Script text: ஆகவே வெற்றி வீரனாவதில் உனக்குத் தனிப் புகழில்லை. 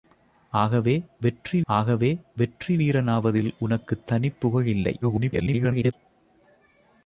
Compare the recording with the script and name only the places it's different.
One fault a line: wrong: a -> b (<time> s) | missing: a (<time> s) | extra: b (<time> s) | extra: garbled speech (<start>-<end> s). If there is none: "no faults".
extra: ஆகவே வெற்றி (1.7 s)
extra: garbled speech (5.0-5.9 s)